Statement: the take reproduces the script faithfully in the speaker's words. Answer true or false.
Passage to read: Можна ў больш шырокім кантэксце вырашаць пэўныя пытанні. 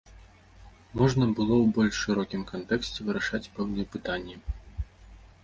false